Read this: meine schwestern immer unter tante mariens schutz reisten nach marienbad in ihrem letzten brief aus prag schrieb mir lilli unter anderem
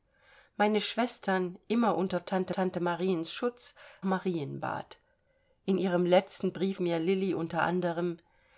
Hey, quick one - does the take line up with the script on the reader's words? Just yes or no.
no